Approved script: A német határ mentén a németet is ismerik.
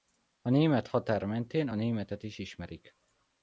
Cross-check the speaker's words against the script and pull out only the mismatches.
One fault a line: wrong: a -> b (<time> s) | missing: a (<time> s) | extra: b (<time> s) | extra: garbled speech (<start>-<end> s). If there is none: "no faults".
no faults